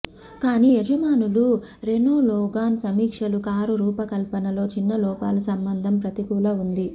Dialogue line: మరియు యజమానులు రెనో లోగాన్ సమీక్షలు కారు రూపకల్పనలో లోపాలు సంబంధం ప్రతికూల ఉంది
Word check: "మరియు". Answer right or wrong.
wrong